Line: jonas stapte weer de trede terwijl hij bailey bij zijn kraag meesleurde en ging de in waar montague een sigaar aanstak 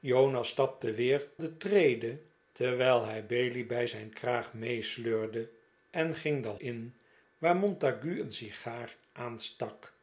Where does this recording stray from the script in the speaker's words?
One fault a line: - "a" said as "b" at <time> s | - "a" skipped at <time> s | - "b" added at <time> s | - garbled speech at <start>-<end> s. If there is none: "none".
none